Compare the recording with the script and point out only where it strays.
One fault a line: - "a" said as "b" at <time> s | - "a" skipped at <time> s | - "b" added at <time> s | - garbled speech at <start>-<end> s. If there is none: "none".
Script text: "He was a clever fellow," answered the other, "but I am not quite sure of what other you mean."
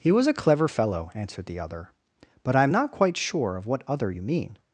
none